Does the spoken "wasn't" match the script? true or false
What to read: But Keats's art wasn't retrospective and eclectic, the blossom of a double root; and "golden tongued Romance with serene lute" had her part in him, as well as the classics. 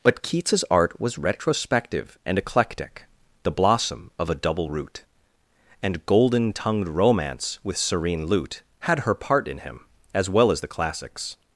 false